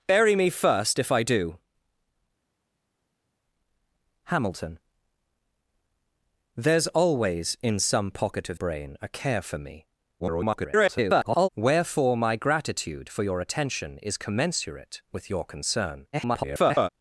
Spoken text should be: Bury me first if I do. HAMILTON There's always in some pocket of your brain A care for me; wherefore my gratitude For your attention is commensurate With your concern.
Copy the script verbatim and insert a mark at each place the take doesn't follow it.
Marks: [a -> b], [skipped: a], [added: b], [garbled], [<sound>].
Bury me first if I do. HAMILTON There's always in some pocket of [skipped: your] brain A care for me; [garbled] wherefore my gratitude For your attention is commensurate With your concern. [garbled]